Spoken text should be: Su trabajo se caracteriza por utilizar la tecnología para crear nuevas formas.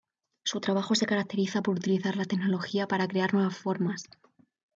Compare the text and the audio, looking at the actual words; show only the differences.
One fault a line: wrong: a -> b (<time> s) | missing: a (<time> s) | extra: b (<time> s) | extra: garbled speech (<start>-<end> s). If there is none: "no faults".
no faults